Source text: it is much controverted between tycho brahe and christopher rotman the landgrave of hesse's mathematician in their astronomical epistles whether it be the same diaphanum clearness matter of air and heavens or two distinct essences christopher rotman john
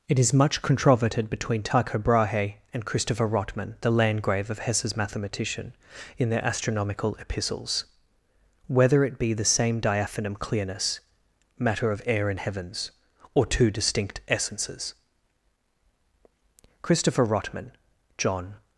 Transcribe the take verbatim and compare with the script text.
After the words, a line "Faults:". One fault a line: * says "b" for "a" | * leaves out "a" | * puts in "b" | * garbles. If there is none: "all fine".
it is much controverted between tycho brahe and christopher rotman the landgrave of hesse's mathematician in their astronomical epistles whether it be the same diaphanum clearness matter of air and heavens or two distinct essences christopher rotman john
Faults:
all fine